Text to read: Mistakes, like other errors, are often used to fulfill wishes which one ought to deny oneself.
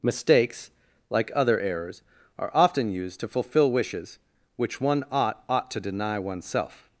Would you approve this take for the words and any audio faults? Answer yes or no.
no